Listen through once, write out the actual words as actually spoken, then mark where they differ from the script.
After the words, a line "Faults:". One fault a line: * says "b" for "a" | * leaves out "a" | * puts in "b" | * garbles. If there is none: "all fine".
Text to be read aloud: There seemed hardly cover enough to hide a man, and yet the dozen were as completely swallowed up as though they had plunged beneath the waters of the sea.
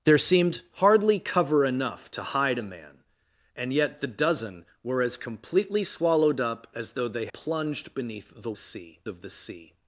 There seemed hardly cover enough to hide a man, and yet the dozen were as completely swallowed up as though they plunged beneath the sea of the sea.
Faults:
* leaves out "had"
* says "sea" for "waters"